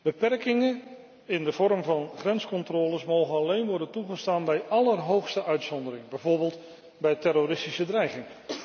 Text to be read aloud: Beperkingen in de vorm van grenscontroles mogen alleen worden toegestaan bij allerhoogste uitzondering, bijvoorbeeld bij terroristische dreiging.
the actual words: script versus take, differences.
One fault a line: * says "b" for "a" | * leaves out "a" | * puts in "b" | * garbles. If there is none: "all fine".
all fine